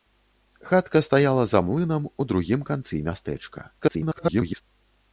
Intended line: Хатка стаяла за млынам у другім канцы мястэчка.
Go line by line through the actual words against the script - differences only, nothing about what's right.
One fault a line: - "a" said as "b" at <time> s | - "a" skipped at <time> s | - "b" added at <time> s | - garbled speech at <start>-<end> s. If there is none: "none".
- garbled speech at 3.8-4.6 s